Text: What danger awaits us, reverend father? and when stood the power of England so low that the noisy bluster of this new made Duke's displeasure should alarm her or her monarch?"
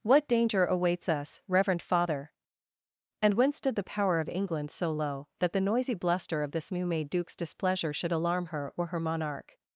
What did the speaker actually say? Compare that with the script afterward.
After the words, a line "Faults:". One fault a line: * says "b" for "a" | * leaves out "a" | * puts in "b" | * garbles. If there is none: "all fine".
What danger awaits us, reverend father? and when stood the power of England so low that the noisy bluster of this new made Duke's displeasure should alarm her or her monarch?"
Faults:
all fine